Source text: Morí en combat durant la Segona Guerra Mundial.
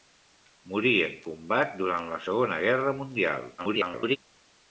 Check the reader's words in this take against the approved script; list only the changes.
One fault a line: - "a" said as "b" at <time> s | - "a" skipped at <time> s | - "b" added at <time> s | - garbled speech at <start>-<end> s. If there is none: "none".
- garbled speech at 3.6-4.2 s